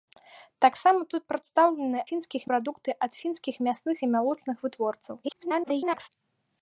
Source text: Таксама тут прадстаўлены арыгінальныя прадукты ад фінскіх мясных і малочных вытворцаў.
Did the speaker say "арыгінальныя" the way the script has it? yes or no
no